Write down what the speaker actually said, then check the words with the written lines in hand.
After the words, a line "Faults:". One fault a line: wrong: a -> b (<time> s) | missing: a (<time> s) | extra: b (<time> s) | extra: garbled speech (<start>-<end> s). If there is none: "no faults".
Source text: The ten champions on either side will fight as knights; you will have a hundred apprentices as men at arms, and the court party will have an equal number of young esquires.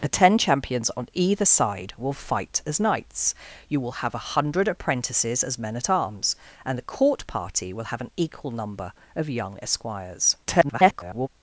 The ten champions on either side will fight as knights; you will have a hundred apprentices as men at arms, and the court party will have an equal number of young esquires. [garbled]
Faults:
extra: garbled speech (10.4-11.3 s)